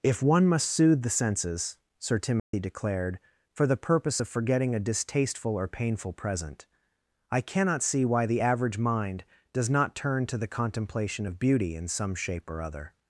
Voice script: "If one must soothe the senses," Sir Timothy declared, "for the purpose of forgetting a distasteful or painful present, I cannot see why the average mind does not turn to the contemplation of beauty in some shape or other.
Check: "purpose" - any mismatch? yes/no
no